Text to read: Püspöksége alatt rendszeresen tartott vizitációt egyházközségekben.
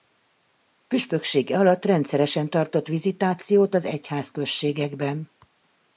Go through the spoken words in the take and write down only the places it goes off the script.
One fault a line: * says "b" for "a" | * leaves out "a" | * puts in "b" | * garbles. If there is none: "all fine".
* puts in "az"